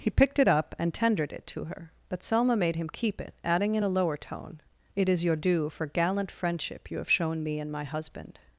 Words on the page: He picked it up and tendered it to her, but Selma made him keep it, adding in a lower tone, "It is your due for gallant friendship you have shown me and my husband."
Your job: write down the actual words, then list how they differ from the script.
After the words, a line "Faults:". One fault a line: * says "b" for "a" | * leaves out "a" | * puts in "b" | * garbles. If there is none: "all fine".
He picked it up and tendered it to her, but Selma made him keep it, adding in a lower tone, "It is your due for gallant friendship you have shown me and my husband."
Faults:
all fine